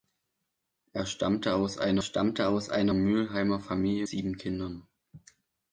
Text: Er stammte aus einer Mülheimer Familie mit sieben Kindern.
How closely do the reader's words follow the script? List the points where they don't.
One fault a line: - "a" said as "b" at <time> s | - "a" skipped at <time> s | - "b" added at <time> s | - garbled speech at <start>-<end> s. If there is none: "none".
- "stammte aus einer" added at 2.0 s
- "mit" skipped at 4.1 s